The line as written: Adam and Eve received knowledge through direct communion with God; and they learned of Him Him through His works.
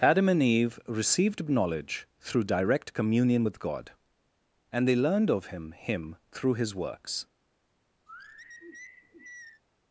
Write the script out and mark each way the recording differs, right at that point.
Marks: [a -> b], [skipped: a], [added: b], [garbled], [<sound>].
Adam and Eve received knowledge through direct communion with God; and they learned of Him Him through His works. [sigh]